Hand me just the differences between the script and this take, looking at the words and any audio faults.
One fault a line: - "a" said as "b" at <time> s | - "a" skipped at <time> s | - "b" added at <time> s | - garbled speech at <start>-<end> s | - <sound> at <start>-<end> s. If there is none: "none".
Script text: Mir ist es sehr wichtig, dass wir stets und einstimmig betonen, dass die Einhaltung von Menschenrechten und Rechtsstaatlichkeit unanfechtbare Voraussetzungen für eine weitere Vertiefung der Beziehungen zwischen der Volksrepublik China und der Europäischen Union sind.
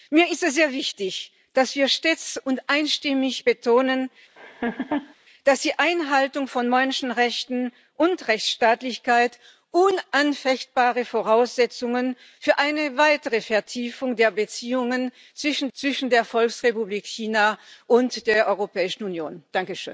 - laugh at 4.4-5.1 s
- "zwischen" added at 15.7 s